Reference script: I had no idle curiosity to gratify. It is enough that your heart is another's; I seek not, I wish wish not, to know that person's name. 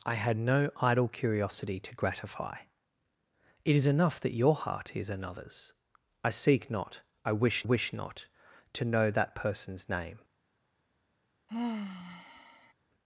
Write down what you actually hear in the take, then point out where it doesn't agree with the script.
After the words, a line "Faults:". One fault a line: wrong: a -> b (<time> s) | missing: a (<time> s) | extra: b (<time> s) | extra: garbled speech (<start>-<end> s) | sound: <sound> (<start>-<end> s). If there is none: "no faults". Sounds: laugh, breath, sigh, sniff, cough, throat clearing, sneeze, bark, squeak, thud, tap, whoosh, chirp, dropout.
I had no idle curiosity to gratify. It is enough that your heart is another's; I seek not, I wish wish not, to know that person's name.
Faults:
sound: sigh (11.5-12.7 s)